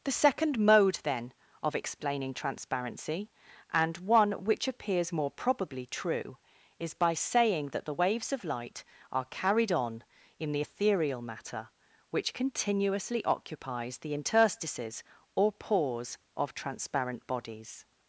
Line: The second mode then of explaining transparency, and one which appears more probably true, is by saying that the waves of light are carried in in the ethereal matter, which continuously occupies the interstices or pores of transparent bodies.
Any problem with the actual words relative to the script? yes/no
yes